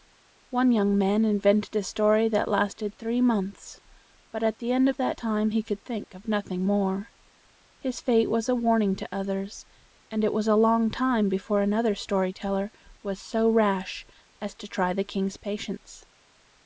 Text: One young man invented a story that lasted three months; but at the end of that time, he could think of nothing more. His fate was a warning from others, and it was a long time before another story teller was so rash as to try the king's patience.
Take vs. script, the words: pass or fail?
fail